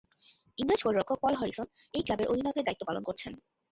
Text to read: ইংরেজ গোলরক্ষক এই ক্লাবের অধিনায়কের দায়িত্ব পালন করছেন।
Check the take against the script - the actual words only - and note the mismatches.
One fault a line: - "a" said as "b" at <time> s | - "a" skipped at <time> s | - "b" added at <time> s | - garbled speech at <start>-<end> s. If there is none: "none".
- "পল হ্যারিসন" added at 1.2 s